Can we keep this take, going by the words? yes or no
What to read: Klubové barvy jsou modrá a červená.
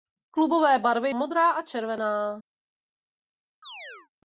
no